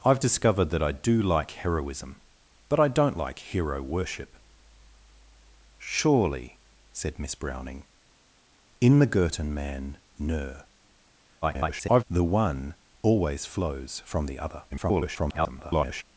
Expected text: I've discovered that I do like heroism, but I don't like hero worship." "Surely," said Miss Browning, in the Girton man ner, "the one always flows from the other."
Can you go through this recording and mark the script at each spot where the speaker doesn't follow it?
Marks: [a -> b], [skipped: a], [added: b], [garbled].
I've discovered that I do like heroism, but I don't like hero worship." "Surely," said Miss Browning, in the Girton man ner, [garbled] "the one always flows from the other." [garbled]